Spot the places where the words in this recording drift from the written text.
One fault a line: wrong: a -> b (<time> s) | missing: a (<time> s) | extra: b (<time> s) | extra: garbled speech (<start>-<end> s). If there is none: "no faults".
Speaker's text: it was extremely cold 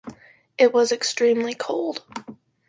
no faults